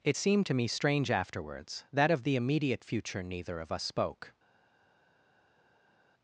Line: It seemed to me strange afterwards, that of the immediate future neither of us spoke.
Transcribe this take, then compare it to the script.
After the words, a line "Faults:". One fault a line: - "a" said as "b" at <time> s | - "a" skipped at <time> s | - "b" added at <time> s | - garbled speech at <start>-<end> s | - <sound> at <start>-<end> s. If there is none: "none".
It seemed to me strange afterwards, that of the immediate future neither of us spoke.
Faults:
none